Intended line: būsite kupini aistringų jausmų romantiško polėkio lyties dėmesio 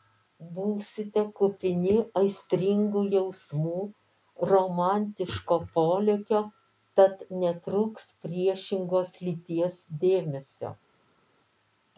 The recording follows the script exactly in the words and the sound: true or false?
false